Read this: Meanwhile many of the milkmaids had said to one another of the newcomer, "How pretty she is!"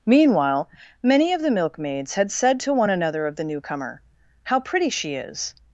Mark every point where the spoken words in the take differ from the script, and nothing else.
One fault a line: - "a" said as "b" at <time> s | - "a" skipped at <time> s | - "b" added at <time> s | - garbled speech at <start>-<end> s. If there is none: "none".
none